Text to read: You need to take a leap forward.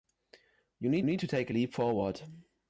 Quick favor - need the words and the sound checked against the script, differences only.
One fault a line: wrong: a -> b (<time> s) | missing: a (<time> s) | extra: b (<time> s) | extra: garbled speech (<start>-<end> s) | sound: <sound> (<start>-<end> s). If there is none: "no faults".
extra: need (1.0 s)